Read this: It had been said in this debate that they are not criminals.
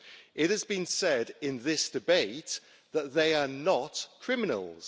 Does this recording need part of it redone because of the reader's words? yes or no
yes